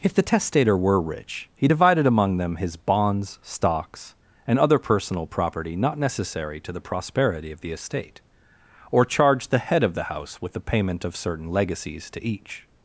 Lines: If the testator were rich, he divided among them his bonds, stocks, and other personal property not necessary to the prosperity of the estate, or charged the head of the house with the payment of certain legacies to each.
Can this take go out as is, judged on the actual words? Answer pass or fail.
pass